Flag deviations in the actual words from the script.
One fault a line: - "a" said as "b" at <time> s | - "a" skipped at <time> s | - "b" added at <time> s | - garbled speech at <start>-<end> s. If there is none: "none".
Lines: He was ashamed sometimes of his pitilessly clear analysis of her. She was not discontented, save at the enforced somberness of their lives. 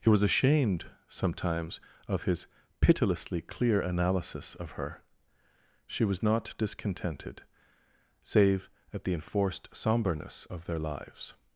none